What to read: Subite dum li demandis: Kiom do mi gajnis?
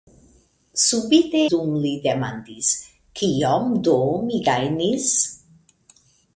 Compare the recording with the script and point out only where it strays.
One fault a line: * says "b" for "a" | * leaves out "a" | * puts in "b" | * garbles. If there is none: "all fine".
all fine